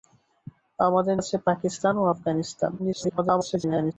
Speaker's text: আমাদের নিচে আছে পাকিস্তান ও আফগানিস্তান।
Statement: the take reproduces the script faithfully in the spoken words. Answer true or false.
false